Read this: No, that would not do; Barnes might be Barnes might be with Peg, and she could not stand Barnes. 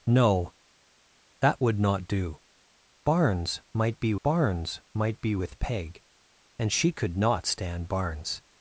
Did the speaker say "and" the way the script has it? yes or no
yes